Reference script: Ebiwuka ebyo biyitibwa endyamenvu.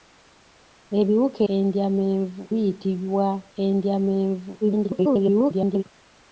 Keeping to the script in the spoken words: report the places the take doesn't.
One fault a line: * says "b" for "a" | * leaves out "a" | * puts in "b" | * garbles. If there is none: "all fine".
* says "endyamenvu" for "ebyo"
* garbles